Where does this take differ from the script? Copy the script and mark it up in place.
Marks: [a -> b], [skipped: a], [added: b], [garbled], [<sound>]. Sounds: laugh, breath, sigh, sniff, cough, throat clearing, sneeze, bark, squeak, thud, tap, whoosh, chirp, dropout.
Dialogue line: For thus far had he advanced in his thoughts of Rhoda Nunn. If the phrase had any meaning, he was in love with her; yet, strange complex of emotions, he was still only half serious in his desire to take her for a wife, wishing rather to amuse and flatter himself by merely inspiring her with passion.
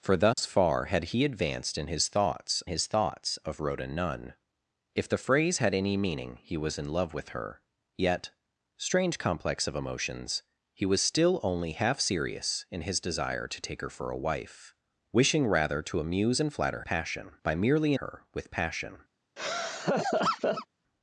For thus [dropout] far had he advanced in his thoughts [added: his thoughts] of Rhoda Nunn. If the phrase had any meaning, he was in love with her; yet, strange complex of emotions, he was still only half serious in his desire to take her for a wife, wishing rather to amuse and flatter [himself -> passion] by merely [skipped: inspiring] her with passion. [laugh]